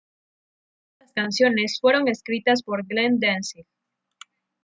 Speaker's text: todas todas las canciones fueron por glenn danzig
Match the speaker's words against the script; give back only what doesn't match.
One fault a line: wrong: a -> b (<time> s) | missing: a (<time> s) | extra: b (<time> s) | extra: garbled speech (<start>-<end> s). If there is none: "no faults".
missing: todas (1.1 s)
extra: escritas (2.1 s)